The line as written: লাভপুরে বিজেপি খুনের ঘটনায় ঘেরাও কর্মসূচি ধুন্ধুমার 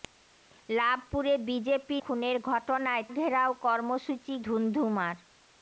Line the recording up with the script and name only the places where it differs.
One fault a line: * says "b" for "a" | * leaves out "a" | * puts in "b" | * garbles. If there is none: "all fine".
all fine